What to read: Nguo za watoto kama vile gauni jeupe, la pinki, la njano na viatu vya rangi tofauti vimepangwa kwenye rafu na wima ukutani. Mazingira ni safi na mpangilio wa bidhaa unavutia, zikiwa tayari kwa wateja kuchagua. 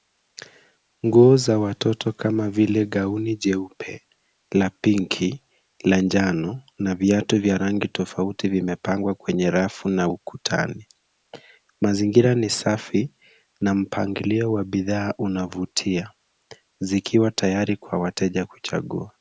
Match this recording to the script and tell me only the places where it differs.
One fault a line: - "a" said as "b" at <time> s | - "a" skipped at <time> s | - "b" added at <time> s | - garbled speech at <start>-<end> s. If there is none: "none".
- "wima" skipped at 10.1 s